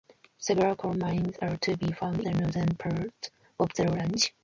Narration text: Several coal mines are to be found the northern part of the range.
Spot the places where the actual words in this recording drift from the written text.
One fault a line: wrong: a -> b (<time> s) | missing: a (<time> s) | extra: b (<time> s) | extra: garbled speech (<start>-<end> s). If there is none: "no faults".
no faults